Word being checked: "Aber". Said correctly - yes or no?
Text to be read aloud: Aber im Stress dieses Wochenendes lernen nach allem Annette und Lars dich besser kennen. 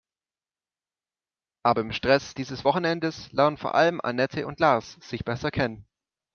yes